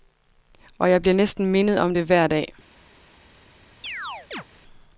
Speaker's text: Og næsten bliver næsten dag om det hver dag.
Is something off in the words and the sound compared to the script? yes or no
yes